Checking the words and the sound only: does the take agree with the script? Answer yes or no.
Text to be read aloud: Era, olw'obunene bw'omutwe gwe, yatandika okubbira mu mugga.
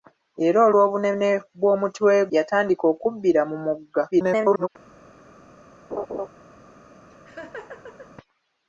no